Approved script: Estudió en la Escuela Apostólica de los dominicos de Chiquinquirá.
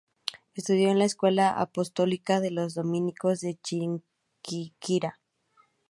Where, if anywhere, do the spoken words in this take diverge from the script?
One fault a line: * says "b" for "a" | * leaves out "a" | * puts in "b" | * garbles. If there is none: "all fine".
all fine